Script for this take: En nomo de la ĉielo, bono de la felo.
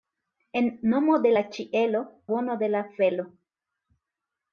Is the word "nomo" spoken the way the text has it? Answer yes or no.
yes